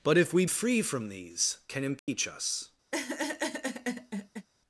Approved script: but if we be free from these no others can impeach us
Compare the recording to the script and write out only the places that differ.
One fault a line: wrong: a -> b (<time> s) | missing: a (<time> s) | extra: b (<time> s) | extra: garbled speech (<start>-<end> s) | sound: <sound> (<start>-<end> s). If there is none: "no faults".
missing: be (0.5 s)
missing: no others (1.6 s)
sound: dropout (2.0-2.1 s)
sound: laugh (2.9-4.5 s)